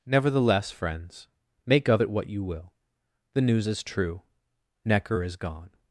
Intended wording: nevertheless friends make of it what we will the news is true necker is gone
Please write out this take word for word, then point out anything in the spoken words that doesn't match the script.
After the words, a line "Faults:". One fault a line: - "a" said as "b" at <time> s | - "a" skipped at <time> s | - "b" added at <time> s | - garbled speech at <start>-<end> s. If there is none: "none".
nevertheless friends make of it what you will the news is true necker is gone
Faults:
- "we" said as "you" at 2.3 s